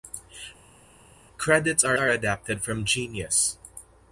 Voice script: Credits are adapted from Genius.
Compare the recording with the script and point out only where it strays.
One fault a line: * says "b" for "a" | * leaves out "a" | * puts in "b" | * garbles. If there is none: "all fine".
* puts in "are"